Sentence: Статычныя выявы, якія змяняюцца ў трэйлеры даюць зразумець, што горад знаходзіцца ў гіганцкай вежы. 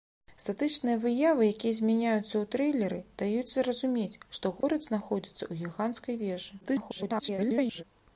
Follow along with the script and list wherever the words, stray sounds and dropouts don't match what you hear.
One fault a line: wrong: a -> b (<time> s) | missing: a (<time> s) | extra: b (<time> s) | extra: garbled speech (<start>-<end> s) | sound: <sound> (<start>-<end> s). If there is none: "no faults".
sound: dropout (4.6-4.6 s)
extra: garbled speech (6.6-7.8 s)